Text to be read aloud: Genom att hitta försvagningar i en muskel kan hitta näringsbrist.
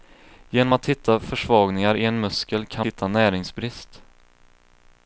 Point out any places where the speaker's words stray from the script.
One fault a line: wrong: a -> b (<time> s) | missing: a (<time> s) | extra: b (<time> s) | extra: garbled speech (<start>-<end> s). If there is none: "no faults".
no faults